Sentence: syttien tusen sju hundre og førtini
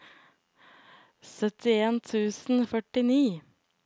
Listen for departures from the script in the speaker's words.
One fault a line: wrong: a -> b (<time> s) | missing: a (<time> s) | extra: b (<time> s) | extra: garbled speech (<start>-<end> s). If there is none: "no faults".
missing: sju hundre (2.6 s)